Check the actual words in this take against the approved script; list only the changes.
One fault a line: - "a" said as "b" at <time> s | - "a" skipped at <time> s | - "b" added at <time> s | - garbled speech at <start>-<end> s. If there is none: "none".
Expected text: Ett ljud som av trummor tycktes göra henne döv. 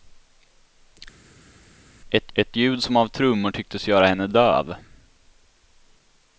- "ett" added at 2.3 s